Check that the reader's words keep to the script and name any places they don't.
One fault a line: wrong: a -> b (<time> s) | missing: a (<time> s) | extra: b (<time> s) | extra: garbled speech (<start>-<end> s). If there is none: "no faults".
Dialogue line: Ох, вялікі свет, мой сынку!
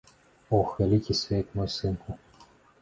no faults